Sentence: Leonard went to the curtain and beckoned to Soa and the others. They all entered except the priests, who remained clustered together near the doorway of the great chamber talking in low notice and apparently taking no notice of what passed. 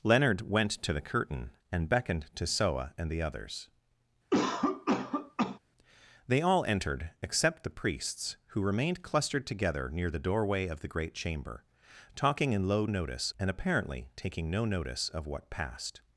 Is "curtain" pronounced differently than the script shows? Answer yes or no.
no